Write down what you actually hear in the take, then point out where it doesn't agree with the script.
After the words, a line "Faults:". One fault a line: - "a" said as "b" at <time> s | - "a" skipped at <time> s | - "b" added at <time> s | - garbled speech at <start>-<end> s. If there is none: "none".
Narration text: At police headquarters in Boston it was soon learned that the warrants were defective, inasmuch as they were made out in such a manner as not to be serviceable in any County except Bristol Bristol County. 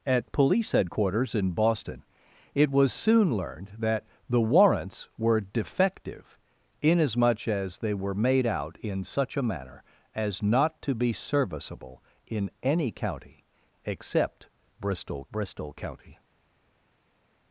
At police headquarters in Boston it was soon learned that the warrants were defective, inasmuch as they were made out in such a manner as not to be serviceable in any County except Bristol Bristol County.
Faults:
none